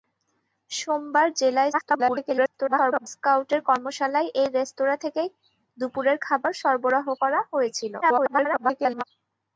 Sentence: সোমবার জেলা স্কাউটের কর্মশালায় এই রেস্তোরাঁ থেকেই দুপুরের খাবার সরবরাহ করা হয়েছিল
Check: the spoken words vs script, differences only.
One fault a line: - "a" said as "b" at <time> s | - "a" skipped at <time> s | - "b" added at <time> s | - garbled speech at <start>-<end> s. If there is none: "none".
- garbled speech at 1.7-3.1 s
- garbled speech at 8.0-9.0 s